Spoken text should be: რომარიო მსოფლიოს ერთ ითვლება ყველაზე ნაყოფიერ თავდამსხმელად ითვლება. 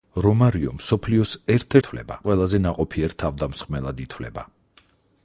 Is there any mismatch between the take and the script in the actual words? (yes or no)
no